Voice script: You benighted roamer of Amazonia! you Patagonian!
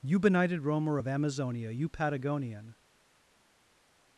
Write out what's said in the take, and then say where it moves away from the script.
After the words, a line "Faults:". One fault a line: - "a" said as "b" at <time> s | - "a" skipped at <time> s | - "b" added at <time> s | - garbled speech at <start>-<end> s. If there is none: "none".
You benighted roamer of Amazonia! you Patagonian!
Faults:
none